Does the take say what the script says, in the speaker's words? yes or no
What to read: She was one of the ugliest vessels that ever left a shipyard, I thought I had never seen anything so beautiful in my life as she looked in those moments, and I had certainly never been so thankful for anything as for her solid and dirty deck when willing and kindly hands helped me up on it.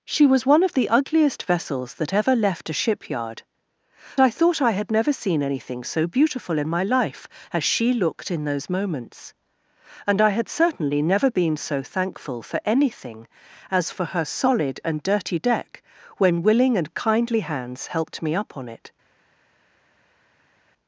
yes